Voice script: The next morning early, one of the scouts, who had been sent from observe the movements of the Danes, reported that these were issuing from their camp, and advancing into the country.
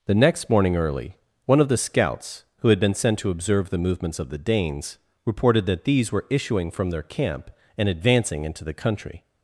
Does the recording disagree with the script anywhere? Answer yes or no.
yes